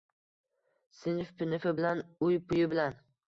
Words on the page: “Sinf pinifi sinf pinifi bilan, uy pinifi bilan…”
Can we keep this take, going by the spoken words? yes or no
no